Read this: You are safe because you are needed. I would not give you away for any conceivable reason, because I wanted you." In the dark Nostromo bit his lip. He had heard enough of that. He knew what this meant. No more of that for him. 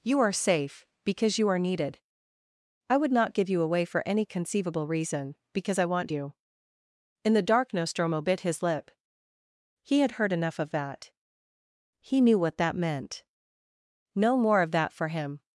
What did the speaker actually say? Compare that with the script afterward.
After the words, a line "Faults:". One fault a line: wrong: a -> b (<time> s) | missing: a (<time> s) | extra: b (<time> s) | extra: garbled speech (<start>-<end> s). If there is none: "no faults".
You are safe because you are needed. I would not give you away for any conceivable reason, because I want you." In the dark Nostromo bit his lip. He had heard enough of that. He knew what that meant. No more of that for him.
Faults:
wrong: wanted -> want (5.8 s)
wrong: this -> that (12.6 s)